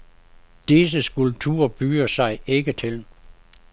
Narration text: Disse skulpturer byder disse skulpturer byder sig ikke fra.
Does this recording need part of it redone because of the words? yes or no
yes